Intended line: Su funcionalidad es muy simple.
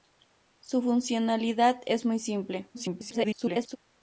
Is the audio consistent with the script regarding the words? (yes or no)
no